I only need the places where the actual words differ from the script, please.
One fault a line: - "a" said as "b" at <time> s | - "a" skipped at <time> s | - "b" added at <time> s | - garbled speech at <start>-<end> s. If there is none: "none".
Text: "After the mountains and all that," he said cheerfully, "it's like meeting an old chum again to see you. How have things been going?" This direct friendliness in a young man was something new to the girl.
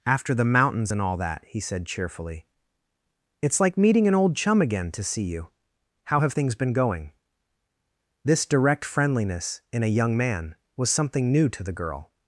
none